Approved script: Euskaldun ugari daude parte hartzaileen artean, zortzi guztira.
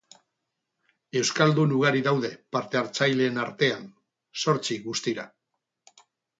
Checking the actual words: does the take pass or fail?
pass